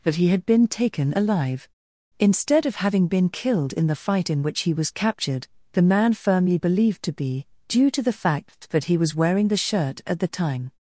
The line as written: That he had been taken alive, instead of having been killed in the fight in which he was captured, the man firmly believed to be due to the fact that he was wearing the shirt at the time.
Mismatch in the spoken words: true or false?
false